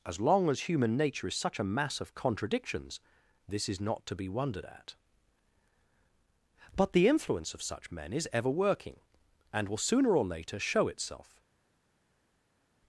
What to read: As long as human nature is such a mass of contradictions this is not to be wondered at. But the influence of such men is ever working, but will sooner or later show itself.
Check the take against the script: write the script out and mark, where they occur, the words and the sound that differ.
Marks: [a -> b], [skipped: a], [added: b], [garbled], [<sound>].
As long as human nature is such a mass of contradictions this is not to be wondered at. But the influence of such men is ever working, [but -> and] will sooner or later show itself.